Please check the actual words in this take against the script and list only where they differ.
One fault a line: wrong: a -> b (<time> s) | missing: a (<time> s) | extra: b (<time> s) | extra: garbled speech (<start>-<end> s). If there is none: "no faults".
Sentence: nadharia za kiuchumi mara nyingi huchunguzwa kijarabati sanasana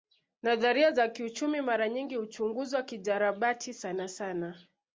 no faults